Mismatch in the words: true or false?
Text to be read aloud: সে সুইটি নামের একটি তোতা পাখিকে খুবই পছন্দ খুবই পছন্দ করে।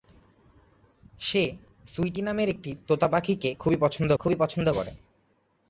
false